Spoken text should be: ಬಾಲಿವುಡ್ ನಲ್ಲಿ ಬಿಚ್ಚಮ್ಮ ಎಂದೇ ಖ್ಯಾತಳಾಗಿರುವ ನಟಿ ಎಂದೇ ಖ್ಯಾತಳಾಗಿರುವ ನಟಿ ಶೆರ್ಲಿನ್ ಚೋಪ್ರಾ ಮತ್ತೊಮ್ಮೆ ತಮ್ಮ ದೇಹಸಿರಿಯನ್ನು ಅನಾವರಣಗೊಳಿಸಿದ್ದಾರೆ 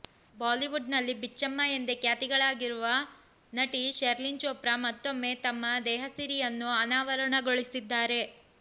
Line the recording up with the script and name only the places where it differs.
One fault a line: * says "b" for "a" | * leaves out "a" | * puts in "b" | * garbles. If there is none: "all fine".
* leaves out "ಎಂದೇ ಖ್ಯಾತಳಾಗಿರುವ ನಟಿ"